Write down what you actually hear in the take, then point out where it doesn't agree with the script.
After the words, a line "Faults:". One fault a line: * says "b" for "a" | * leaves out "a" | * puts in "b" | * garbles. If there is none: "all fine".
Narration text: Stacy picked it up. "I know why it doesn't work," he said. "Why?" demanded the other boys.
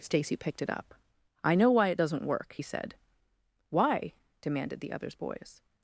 Stacy picked it up. "I know why it doesn't work," he said. "Why?" demanded the others boys.
Faults:
* says "others" for "other"